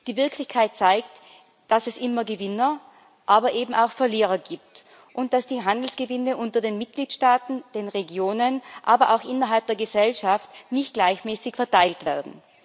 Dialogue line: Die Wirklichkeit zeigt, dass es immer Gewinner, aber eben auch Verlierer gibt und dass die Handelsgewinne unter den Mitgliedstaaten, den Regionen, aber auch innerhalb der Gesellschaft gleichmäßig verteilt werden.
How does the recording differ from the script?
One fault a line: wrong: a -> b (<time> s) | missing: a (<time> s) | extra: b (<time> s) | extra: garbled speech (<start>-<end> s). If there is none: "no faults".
extra: nicht (10.7 s)